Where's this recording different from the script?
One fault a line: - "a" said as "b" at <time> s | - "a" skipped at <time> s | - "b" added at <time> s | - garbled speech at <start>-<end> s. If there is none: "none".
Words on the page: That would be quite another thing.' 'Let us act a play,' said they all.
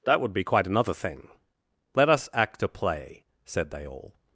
none